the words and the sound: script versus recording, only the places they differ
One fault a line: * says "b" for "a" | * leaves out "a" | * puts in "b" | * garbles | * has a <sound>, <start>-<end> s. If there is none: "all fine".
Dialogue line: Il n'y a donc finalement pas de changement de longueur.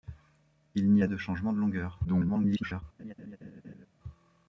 * leaves out "donc finalement pas"
* garbles
* has a laugh, 3.0-3.9 s